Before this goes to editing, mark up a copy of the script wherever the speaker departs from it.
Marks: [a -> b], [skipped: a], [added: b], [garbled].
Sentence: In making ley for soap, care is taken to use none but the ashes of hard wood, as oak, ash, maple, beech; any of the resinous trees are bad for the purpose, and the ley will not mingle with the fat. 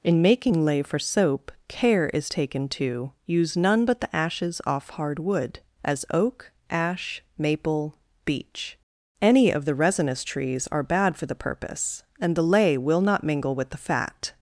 In making ley for soap, care is taken to use none but the ashes [of -> off] hard wood, as oak, ash, maple, beech; any of the resinous trees are bad for the purpose, and the ley will not mingle with the fat.